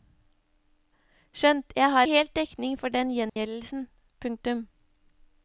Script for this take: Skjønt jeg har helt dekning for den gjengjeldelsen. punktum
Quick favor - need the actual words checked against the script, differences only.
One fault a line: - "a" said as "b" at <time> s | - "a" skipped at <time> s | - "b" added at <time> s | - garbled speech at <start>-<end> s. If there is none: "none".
none